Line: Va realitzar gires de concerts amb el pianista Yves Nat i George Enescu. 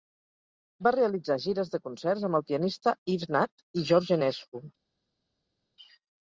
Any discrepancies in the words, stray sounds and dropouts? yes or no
no